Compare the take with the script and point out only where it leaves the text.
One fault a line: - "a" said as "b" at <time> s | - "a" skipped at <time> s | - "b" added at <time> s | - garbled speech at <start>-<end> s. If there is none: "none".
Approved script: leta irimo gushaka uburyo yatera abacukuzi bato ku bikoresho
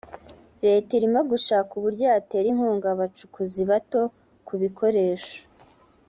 - "inkunga" added at 2.5 s